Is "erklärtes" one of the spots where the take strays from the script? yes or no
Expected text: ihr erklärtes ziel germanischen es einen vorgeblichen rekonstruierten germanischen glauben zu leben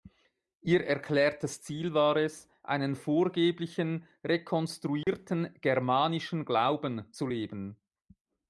no